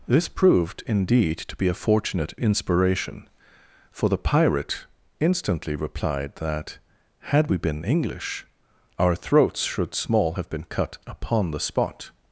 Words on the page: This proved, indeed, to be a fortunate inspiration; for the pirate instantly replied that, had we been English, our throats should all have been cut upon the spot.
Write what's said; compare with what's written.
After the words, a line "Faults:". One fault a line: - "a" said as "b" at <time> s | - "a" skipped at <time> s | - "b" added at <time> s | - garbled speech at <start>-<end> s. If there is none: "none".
This proved, indeed, to be a fortunate inspiration; for the pirate instantly replied that, had we been English, our throats should small have been cut upon the spot.
Faults:
- "all" said as "small" at 9.9 s